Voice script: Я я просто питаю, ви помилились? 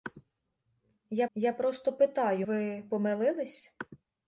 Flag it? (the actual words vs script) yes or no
no